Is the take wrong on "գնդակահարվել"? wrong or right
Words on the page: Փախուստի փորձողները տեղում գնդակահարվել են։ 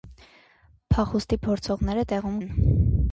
wrong